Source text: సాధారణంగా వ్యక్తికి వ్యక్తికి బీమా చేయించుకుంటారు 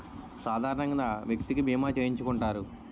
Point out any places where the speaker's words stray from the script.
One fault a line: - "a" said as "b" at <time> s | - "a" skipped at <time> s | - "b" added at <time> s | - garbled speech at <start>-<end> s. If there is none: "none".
- "వ్యక్తికి" skipped at 1.6 s